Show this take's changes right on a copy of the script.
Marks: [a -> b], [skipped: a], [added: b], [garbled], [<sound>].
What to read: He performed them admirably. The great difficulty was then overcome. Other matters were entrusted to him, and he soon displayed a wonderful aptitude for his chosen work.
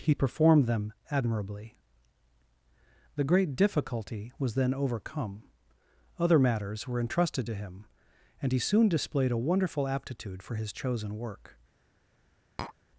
He performed them admirably. The great difficulty was then overcome. Other matters were entrusted to him, and he soon displayed a wonderful aptitude for his chosen work. [tap]